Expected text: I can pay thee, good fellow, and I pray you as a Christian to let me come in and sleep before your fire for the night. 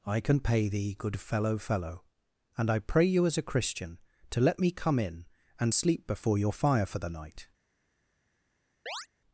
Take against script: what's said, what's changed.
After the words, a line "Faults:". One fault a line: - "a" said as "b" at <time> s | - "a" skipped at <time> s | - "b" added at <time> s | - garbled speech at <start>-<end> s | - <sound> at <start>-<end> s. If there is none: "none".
I can pay thee, good fellow fellow, and I pray you as a Christian to let me come in and sleep before your fire for the night.
Faults:
- "fellow" added at 1.6 s
- chirp at 8.9-9.1 s